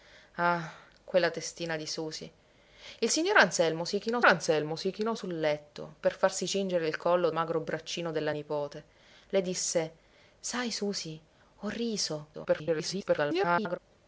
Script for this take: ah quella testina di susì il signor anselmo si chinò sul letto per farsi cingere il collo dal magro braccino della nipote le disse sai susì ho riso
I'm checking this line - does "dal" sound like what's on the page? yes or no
no